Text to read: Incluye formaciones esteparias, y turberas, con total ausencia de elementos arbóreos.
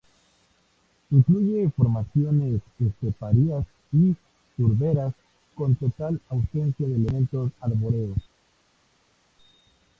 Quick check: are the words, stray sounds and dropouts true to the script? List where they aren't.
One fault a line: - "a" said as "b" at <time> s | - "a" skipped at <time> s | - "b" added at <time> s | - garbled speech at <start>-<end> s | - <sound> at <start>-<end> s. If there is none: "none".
none